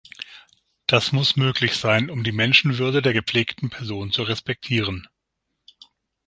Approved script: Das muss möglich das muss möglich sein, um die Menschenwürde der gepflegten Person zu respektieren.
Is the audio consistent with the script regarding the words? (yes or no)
no